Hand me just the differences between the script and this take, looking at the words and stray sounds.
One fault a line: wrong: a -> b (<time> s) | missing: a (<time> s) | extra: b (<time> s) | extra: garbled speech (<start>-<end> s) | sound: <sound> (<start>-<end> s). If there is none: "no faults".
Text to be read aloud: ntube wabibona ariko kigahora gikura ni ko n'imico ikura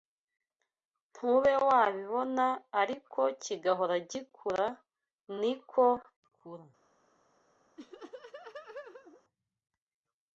missing: n'imico (5.9 s)
sound: laugh (7.8-9.2 s)